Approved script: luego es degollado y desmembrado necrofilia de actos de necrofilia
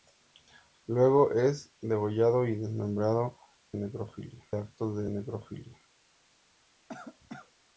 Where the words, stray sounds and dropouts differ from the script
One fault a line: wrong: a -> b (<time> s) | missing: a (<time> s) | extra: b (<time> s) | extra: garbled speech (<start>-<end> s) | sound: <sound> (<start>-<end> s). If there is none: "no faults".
sound: cough (6.9-7.5 s)